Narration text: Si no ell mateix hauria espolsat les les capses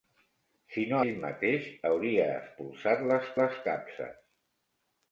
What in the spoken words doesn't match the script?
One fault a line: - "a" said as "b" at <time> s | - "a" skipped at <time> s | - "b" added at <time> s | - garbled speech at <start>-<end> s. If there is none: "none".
none